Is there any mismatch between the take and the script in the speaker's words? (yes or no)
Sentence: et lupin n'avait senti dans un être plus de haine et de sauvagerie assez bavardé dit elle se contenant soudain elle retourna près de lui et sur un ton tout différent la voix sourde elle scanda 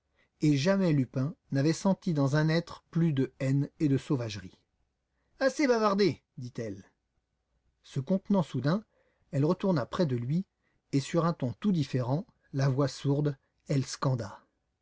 yes